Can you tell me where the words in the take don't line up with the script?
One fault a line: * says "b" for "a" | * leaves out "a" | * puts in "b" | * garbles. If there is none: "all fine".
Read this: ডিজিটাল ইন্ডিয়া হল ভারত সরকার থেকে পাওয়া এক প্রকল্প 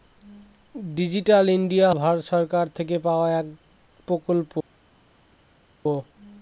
* leaves out "হল"